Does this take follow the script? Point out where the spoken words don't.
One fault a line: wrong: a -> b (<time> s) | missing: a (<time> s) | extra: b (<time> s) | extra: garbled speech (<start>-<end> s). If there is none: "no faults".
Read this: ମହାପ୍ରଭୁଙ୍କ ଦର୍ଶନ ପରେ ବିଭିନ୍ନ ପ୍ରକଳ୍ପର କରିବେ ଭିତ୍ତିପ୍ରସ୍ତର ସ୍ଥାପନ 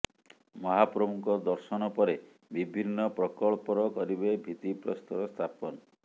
no faults